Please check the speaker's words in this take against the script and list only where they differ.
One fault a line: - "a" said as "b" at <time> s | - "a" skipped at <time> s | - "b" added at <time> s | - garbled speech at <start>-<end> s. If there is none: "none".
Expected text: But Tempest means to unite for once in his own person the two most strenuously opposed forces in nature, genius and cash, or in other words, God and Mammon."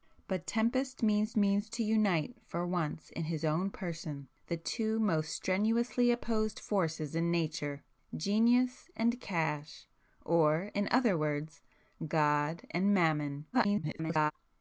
- "means" added at 1.4 s
- garbled speech at 13.5-14.3 s